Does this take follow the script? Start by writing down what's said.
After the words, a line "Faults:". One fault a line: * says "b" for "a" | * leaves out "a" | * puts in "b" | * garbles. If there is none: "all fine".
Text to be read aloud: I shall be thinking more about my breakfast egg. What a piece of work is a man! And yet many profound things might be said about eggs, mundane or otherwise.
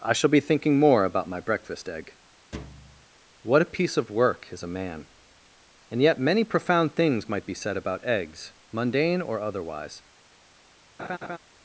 I shall be thinking more about my breakfast egg. What a piece of work is a man! And yet many profound things might be said about eggs, mundane or otherwise.
Faults:
all fine